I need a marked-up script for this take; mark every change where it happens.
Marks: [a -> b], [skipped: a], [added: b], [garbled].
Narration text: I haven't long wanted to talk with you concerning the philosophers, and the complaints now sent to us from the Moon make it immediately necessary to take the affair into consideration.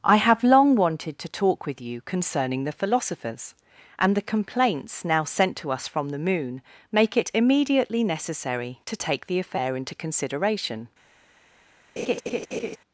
I [haven't -> have] long wanted to talk with you concerning the philosophers, and the complaints now sent to us from the Moon make it immediately necessary to take the affair into consideration.